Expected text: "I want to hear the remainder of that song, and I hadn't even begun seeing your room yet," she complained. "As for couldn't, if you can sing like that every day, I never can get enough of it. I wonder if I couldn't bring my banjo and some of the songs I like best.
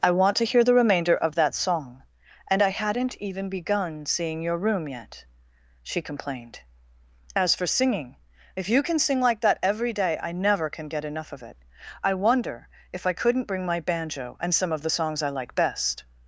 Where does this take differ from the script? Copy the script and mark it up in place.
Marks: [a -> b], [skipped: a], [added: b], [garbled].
"I want to hear the remainder of that song, and I hadn't even begun seeing your room yet," she complained. "As for [couldn't, -> singing] if you can sing like that every day, I never can get enough of it. I wonder if I couldn't bring my banjo and some of the songs I like best.